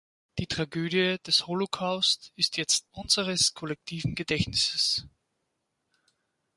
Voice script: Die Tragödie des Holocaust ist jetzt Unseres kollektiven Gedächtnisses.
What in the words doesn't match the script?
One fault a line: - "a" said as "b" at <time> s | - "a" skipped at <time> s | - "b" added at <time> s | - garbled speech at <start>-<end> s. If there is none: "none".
none